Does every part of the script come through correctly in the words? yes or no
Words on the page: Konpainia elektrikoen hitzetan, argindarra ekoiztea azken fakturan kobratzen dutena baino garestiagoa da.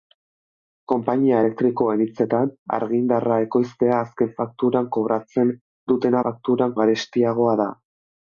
no